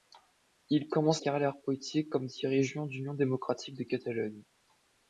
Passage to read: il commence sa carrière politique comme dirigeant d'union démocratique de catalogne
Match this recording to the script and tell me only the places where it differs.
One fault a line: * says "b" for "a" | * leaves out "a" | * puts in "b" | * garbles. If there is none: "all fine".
* leaves out "sa"